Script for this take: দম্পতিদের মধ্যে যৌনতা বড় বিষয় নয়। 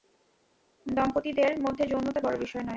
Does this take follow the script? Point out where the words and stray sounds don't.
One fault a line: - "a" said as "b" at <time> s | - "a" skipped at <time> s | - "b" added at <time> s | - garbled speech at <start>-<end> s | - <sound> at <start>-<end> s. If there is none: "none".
none